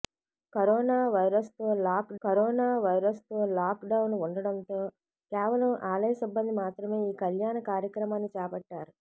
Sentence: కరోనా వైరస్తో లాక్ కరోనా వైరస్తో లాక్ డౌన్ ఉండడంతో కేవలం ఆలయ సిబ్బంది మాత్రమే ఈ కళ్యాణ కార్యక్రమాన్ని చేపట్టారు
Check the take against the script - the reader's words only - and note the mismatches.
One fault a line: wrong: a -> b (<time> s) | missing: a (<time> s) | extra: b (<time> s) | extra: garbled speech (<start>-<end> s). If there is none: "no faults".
no faults